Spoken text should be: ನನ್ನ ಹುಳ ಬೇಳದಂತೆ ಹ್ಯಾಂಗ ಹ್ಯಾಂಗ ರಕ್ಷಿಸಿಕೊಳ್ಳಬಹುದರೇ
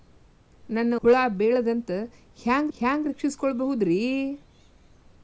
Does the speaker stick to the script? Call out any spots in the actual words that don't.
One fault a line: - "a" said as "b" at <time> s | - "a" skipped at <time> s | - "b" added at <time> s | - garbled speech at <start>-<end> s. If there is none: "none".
none